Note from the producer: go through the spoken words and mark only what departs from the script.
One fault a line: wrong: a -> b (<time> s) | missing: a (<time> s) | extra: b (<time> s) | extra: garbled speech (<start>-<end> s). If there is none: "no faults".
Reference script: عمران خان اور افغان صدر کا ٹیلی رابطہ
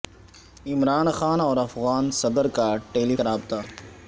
no faults